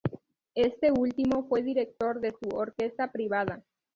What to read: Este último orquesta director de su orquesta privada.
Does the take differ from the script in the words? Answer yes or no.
yes